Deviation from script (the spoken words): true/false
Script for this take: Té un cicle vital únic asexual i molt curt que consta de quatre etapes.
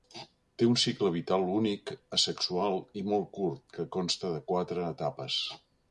false